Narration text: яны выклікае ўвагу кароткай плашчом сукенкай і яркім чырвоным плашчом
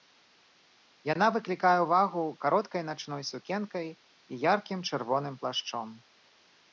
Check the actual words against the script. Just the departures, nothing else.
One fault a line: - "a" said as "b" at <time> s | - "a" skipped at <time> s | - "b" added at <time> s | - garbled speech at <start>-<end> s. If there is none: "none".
- "яны" said as "яна" at 1.1 s
- "плашчом" said as "начной" at 2.9 s